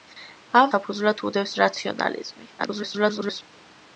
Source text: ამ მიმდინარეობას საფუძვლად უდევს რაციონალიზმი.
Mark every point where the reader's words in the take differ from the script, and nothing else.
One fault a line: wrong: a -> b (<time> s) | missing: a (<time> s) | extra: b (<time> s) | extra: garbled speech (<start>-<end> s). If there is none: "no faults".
missing: მიმდინარეობას (0.7 s)
extra: garbled speech (2.6-3.4 s)